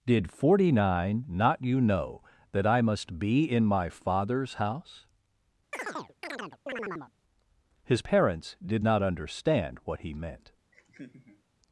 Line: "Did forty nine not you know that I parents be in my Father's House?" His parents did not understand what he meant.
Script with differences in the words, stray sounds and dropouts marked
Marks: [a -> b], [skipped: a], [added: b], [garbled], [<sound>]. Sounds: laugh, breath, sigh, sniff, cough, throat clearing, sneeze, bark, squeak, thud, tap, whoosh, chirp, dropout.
"Did forty nine not you know that I [parents -> must] be in my Father's House?" [chirp] His parents did not understand what he meant. [laugh]